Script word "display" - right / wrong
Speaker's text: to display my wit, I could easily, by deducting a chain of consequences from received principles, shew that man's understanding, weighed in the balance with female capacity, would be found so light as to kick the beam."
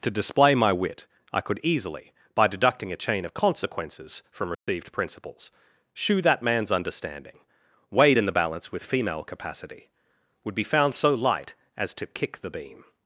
right